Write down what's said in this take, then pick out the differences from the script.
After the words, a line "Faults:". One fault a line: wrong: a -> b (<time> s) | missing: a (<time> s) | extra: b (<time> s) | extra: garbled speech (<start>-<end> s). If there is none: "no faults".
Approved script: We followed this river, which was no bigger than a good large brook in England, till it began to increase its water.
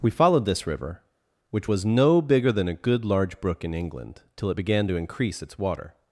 We followed this river, which was no bigger than a good large brook in England, till it began to increase its water.
Faults:
no faults